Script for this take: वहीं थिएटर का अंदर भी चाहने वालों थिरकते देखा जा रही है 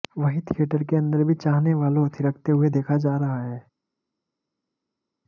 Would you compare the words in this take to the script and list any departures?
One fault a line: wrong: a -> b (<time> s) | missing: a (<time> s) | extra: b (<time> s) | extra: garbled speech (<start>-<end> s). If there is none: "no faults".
wrong: का -> के (0.8 s)
extra: हुए (2.5 s)
wrong: रही -> रहा (3.2 s)